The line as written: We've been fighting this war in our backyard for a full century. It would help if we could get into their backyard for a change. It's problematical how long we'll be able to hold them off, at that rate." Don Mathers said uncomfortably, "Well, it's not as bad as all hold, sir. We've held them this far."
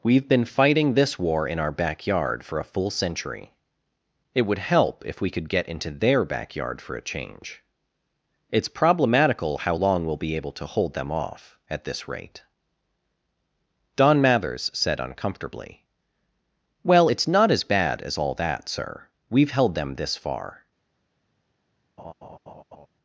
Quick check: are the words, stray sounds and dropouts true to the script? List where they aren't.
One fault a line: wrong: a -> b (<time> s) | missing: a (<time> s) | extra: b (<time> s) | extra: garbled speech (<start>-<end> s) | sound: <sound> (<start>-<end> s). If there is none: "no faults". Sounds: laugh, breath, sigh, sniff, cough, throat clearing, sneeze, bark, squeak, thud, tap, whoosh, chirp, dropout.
wrong: that -> this (11.8 s)
wrong: hold -> that (18.3 s)
sound: laugh (22.0-22.9 s)